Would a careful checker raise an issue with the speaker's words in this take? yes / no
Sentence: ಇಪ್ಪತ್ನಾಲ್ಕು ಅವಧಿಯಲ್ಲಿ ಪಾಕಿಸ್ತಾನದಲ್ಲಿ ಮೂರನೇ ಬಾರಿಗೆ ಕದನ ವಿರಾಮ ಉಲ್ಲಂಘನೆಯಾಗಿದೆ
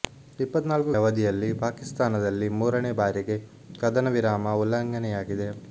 no